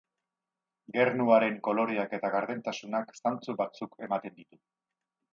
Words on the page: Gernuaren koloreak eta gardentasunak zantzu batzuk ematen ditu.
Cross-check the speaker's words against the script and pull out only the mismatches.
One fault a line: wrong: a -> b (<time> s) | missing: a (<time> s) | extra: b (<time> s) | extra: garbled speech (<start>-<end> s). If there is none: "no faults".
no faults